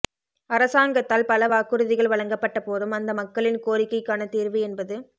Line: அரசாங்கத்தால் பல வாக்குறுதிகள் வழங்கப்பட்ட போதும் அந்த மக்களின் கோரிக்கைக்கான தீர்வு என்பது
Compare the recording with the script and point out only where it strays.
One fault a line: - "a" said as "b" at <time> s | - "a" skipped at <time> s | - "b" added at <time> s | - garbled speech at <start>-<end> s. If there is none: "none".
none